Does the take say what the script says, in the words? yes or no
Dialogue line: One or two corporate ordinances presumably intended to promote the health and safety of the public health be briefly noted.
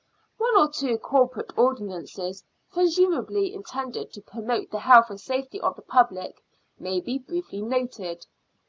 no